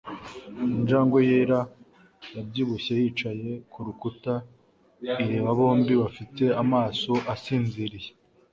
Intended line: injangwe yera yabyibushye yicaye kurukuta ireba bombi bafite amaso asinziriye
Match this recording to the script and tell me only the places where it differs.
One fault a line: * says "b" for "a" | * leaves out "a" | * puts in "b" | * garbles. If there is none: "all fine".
all fine